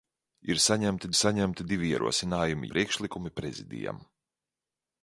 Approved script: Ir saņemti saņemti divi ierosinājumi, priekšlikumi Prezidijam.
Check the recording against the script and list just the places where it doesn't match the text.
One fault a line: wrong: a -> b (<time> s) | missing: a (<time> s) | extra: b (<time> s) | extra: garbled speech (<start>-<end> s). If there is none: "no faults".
no faults